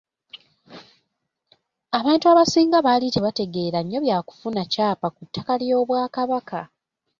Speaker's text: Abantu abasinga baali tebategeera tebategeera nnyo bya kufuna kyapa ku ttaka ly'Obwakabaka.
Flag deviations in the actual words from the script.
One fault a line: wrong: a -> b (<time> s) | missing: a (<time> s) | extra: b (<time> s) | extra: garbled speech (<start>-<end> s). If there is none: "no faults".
missing: tebategeera (3.8 s)